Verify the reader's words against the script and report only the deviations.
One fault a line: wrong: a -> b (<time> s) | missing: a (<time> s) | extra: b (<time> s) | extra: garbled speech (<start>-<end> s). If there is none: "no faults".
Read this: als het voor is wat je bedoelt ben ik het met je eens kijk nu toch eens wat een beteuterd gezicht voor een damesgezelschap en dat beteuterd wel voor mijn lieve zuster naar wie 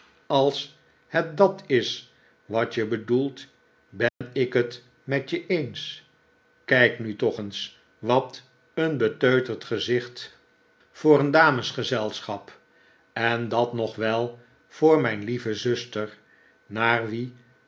wrong: voor -> dat (1.4 s)
wrong: beteuterd -> nog (13.7 s)